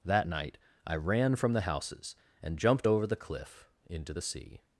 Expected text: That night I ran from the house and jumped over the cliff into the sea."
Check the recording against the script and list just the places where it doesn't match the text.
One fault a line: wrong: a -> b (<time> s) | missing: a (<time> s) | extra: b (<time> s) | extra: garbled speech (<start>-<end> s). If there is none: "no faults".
wrong: house -> houses (1.6 s)